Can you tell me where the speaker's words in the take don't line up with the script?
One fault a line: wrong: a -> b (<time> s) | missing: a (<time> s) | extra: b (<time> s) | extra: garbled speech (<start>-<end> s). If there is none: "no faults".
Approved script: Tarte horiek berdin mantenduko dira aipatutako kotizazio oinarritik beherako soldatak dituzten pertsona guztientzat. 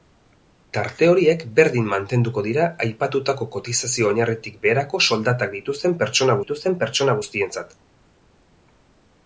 extra: dituzten pertsona (6.4 s)